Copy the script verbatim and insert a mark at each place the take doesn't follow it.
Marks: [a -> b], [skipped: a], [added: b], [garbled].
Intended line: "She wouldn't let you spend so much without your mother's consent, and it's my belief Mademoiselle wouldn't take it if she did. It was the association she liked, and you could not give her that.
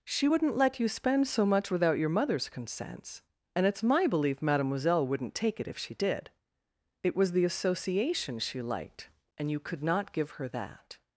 "She wouldn't let you spend so much without your mother's [consent, -> consents] and it's my belief Mademoiselle wouldn't take it if she did. It was the association she liked, and you could not give her that.